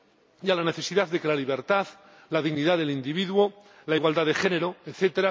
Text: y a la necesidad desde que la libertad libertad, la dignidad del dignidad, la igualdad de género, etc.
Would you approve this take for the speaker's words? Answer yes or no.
no